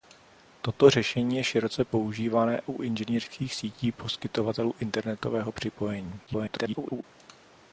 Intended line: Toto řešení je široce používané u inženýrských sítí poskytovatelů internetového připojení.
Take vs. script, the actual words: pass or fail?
fail